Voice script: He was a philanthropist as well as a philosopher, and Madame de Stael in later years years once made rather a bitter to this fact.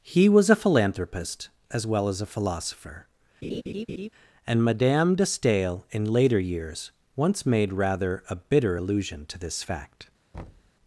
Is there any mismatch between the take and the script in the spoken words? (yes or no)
yes